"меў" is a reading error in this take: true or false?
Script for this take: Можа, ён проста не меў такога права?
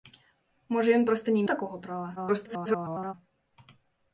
true